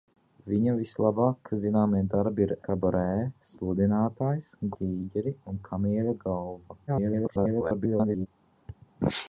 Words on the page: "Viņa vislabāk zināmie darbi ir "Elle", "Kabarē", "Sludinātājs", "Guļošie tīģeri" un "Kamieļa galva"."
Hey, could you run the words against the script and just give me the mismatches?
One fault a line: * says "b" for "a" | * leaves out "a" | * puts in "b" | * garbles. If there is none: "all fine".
* leaves out "Elle"
* leaves out "Guļošie"
* garbles